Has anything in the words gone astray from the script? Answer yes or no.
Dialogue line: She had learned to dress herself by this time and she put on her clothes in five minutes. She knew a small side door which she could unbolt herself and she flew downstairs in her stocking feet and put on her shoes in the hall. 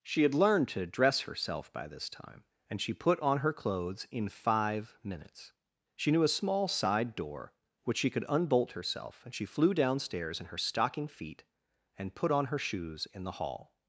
no